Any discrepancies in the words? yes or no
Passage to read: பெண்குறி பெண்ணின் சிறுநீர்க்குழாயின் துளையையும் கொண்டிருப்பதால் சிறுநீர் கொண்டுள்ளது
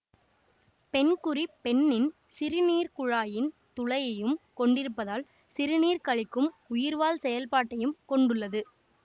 yes